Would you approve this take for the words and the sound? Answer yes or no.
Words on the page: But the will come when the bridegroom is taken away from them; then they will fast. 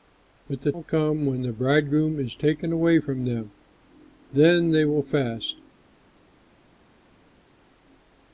yes